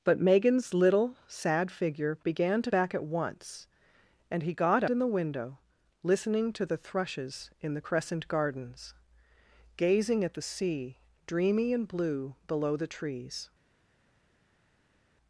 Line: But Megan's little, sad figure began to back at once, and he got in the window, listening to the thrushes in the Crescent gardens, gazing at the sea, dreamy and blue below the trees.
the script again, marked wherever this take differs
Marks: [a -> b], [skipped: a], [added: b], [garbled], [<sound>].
But Megan's little, sad figure began to back at once, and he got in the window, listening to the thrushes in the Crescent gardens, gazing at the sea, dreamy and blue below the trees.